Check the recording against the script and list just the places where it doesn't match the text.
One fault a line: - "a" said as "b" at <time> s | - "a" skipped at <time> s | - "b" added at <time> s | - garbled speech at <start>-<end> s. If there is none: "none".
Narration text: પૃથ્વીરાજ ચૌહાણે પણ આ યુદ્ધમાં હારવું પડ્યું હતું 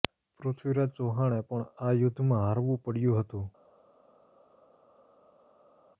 none